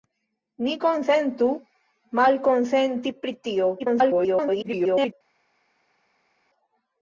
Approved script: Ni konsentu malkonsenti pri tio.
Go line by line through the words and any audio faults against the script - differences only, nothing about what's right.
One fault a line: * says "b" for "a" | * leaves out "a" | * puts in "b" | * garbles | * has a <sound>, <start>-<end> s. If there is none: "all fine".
* garbles